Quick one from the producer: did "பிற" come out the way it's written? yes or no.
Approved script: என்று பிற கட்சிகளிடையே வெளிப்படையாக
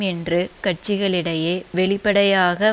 no